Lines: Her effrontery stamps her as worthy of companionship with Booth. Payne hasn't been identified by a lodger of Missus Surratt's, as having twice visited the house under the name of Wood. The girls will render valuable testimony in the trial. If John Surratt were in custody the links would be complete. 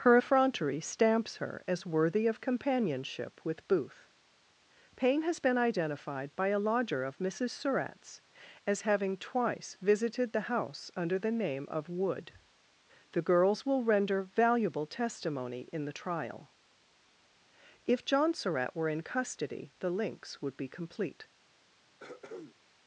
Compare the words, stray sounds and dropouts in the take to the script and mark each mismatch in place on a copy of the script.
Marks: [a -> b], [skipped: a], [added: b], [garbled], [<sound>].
Her effrontery stamps her as worthy of companionship with Booth. Payne [hasn't -> has] been identified by a lodger of Missus Surratt's, as having twice visited the house under the name of Wood. The girls will render valuable testimony in the trial. If John Surratt were in custody the links would be complete. [throat clearing]